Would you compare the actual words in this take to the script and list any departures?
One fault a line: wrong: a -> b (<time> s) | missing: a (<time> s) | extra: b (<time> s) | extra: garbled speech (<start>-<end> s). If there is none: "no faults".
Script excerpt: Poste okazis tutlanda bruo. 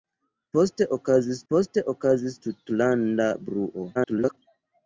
extra: poste okazis (1.5 s)
extra: garbled speech (3.9-4.4 s)